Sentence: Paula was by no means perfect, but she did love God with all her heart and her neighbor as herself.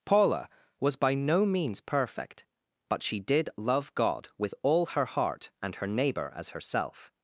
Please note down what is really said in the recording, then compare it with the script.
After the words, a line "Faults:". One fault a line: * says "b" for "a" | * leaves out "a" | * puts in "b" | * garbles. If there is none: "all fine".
Paula was by no means perfect, but she did love God with all her heart and her neighbor as herself.
Faults:
all fine